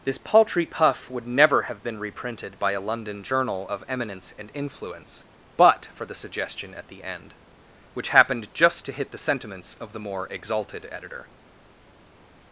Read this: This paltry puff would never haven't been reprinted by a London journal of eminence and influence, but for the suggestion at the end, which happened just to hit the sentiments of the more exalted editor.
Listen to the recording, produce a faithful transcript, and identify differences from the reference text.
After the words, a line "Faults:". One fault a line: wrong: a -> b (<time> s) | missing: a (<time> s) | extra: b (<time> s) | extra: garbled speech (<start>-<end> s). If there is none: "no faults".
This paltry puff would never have been reprinted by a London journal of eminence and influence, but for the suggestion at the end, which happened just to hit the sentiments of the more exalted editor.
Faults:
wrong: haven't -> have (1.6 s)